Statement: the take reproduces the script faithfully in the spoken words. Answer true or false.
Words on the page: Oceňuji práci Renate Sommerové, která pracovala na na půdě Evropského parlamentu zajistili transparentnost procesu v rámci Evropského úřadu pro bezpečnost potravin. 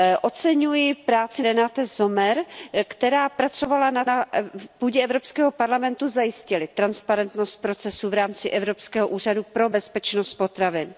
true